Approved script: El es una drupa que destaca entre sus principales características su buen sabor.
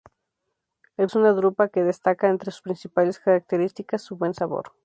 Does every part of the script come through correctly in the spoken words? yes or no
yes